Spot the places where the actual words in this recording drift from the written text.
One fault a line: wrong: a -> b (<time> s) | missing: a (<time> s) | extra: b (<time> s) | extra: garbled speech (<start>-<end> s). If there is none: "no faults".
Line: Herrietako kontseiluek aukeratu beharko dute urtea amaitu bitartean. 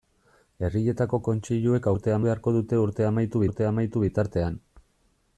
wrong: aukeratu -> urtea (1.9 s)
extra: urtea amaitu (3.5 s)